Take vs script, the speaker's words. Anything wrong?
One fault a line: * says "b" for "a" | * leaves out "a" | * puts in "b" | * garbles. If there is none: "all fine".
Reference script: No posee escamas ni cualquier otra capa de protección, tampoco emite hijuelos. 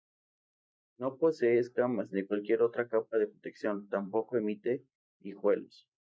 all fine